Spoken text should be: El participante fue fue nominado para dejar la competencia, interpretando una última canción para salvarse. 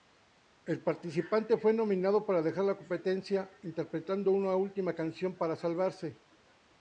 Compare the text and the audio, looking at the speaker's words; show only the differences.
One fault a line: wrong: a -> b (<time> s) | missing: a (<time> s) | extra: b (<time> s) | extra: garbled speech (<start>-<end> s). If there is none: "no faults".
missing: fue (1.7 s)